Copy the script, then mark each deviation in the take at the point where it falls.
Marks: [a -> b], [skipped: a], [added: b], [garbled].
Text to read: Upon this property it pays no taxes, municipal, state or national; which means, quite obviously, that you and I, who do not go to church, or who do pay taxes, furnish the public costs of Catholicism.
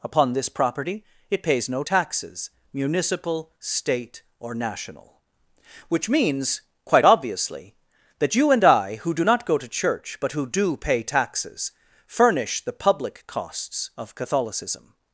Upon this property it pays no taxes, municipal, state or national; which means, quite obviously, that you and I, who do not go to church, [or -> but] who do pay taxes, furnish the public costs of Catholicism.